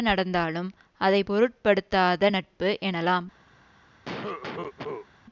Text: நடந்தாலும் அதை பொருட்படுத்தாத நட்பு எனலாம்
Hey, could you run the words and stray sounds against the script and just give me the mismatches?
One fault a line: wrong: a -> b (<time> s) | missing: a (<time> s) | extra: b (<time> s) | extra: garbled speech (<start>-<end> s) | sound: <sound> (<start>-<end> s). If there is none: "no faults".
sound: cough (4.1-5.1 s)